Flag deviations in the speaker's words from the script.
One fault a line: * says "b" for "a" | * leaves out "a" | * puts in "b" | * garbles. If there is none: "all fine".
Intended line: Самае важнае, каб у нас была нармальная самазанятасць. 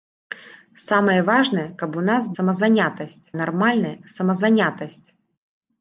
* says "самазанятасць" for "была"